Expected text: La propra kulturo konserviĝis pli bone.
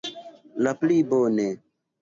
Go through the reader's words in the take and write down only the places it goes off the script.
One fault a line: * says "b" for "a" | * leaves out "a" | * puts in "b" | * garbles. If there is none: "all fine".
* leaves out "propra kulturo konserviĝis"